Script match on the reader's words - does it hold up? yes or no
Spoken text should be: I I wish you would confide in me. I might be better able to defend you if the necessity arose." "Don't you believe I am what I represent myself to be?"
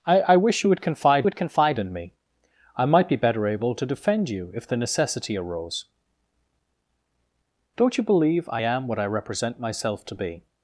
no